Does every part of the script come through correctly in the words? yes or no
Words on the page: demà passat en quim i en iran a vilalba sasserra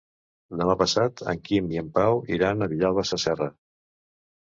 no